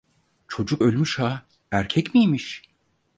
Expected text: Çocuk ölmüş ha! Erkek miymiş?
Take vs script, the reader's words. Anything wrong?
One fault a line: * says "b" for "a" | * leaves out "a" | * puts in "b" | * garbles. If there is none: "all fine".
all fine